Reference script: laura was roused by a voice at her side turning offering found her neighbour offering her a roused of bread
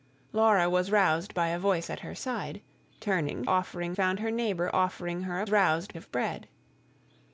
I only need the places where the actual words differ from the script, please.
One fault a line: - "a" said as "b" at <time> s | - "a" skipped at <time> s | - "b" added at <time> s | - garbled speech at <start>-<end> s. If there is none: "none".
none